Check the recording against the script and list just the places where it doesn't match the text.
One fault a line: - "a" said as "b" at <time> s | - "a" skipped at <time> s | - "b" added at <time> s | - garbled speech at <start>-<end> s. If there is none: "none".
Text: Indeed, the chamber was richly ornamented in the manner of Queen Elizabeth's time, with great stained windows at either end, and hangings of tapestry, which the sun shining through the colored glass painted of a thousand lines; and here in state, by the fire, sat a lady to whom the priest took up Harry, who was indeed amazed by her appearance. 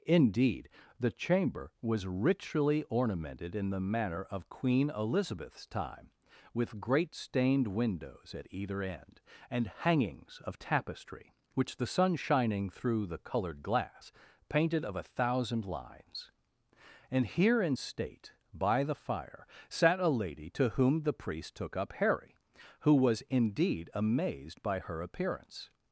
none